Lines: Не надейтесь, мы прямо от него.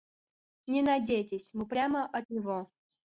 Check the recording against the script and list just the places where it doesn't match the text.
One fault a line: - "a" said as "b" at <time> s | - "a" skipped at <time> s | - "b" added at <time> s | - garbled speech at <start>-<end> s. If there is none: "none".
none